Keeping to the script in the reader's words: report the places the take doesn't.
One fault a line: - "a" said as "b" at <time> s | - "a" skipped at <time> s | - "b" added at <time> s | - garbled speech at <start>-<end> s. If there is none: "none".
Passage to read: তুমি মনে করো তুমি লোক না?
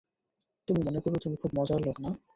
- "খুব মজার" added at 1.4 s